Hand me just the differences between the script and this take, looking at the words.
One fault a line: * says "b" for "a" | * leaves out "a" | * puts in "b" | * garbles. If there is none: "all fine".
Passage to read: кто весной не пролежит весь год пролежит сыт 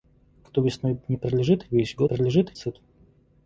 all fine